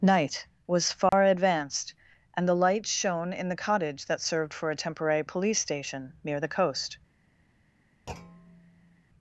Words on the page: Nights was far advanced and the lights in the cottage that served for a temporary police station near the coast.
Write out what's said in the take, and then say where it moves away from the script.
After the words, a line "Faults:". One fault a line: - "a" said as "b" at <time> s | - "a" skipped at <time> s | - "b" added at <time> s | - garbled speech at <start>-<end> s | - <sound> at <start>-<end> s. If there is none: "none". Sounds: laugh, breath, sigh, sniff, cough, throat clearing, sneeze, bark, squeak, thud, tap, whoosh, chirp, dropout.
Night was far advanced and the lights shone in the cottage that served for a temporary police station near the coast.
Faults:
- "Nights" said as "Night" at 0.0 s
- dropout at 1.1-1.1 s
- "shone" added at 2.9 s
- thud at 8.1-9.0 s